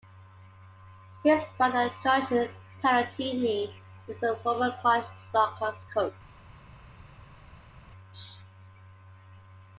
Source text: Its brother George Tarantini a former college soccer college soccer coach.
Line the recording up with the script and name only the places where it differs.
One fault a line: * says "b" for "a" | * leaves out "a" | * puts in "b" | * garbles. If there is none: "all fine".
* says "His" for "Its"
* puts in "is"
* leaves out "college soccer"